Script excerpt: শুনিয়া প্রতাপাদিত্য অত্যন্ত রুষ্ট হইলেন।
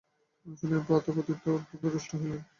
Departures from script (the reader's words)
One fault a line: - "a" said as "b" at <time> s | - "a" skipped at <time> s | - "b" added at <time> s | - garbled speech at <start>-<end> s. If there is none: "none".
none